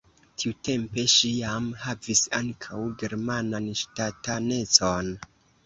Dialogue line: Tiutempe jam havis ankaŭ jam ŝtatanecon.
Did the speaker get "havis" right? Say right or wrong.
right